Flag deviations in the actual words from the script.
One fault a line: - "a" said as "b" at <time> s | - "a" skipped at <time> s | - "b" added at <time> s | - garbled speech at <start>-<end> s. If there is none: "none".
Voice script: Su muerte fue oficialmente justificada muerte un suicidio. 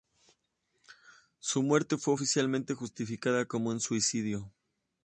- "muerte" said as "como" at 3.4 s